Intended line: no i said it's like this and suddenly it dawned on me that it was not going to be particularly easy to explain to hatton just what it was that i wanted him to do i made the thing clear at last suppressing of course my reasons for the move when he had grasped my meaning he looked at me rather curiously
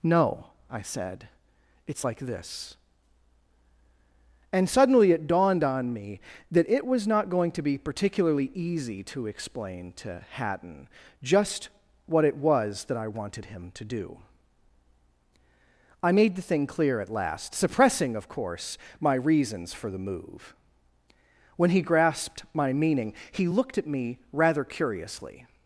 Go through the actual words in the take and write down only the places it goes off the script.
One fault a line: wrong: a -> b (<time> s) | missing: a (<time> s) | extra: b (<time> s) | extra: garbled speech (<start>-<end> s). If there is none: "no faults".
missing: had (21.8 s)